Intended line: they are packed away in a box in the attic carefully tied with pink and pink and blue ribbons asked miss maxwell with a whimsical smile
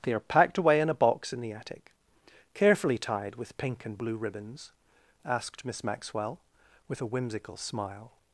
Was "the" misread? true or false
false